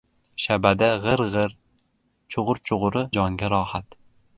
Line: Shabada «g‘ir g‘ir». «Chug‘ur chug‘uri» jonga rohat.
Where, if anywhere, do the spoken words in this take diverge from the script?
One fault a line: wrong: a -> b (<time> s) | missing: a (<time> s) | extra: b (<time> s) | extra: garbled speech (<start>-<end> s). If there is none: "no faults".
no faults